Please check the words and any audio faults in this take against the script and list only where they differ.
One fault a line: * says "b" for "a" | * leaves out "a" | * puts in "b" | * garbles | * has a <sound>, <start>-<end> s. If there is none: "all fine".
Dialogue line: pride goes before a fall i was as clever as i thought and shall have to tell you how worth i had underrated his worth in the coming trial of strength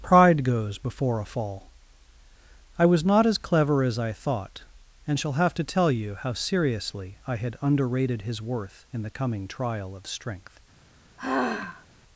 * puts in "not"
* says "seriously" for "worth"
* has a sigh, 11.2-11.9 s